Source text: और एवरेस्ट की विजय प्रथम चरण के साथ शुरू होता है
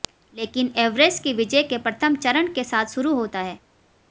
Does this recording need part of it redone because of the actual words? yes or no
yes